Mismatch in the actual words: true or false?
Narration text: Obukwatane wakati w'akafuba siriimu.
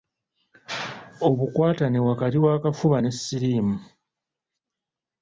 true